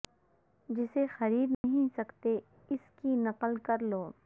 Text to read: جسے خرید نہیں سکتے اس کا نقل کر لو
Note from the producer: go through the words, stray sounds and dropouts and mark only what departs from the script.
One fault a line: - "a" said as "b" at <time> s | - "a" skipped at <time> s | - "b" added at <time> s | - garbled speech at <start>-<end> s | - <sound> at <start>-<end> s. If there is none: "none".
- dropout at 1.5-1.6 s
- "کا" said as "کی" at 3.0 s